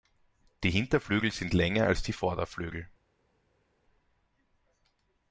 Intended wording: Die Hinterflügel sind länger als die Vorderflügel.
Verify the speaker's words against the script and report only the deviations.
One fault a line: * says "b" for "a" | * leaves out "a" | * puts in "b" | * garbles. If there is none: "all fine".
all fine